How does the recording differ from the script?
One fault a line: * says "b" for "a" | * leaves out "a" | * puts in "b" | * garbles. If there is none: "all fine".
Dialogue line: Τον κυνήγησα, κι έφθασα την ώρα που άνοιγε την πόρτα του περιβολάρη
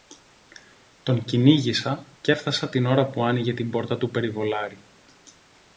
all fine